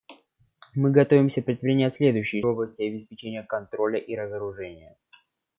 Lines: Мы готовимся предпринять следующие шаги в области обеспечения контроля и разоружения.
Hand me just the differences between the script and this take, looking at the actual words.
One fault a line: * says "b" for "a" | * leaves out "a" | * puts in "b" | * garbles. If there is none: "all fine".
* leaves out "шаги"